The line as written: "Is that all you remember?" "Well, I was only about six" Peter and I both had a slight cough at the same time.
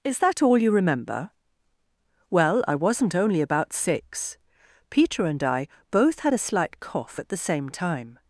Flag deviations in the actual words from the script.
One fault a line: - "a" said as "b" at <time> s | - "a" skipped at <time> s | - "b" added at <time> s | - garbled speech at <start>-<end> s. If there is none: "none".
- "was" said as "wasn't" at 2.8 s